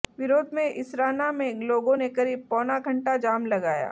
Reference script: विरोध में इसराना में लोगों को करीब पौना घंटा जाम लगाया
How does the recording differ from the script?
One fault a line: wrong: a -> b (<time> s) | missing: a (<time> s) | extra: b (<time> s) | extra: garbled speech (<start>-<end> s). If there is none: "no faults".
wrong: को -> ने (1.9 s)